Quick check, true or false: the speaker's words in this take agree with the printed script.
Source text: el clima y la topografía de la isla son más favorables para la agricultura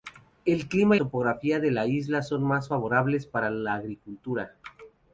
false